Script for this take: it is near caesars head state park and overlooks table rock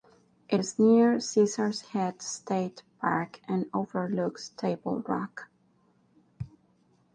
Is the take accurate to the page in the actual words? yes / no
yes